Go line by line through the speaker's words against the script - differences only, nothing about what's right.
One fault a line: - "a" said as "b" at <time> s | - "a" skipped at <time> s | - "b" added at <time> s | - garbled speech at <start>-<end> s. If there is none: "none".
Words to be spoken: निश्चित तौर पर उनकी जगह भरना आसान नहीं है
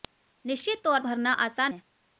- "पर उनकी जगह" skipped at 1.0 s
- "नहीं" skipped at 1.7 s